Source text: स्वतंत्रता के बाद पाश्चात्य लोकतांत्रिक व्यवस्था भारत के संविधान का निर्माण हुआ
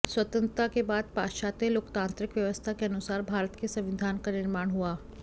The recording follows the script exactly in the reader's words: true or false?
false